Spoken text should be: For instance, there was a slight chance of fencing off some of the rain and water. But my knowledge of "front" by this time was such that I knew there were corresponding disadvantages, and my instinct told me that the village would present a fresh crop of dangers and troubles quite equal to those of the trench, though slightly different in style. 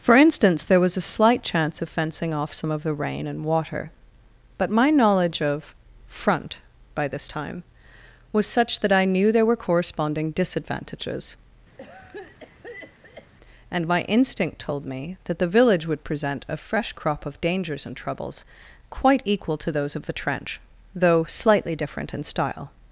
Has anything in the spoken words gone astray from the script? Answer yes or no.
no